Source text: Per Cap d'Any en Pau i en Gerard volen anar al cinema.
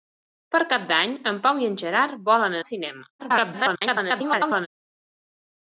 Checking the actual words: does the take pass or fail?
fail